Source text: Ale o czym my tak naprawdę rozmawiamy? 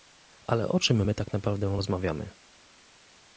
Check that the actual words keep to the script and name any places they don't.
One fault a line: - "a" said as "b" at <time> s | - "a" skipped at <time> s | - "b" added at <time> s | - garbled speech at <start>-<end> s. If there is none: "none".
none